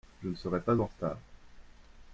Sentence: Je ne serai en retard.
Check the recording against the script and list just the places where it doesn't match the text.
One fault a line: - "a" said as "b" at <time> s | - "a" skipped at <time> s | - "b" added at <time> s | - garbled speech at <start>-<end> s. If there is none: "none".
- "pas" added at 0.6 s